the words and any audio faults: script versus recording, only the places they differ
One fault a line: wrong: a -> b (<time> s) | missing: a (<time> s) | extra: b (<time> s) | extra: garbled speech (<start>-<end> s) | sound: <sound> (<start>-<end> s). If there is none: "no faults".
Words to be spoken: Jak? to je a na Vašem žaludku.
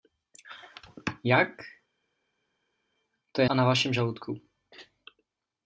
no faults